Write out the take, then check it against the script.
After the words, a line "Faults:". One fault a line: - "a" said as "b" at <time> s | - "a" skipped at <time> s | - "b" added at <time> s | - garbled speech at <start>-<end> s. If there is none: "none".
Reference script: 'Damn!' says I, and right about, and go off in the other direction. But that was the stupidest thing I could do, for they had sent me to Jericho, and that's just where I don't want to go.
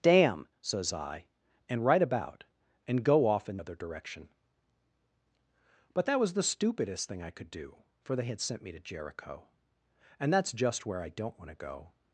'Damn!' says I, and right about, and go off in other direction. But that was the stupidest thing I could do, for they had sent me to Jericho, and that's just where I don't want to go.
Faults:
- "the" skipped at 3.6 s